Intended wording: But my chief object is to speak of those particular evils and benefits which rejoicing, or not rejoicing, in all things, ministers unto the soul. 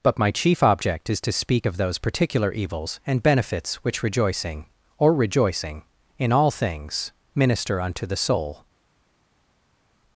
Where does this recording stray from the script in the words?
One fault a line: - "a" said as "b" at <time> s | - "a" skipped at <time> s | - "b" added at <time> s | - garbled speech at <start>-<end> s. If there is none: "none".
- "not" skipped at 5.1 s
- "ministers" said as "minister" at 7.3 s